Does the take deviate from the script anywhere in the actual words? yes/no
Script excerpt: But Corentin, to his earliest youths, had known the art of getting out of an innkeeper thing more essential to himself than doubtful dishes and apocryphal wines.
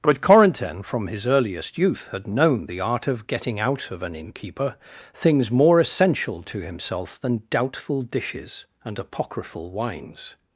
yes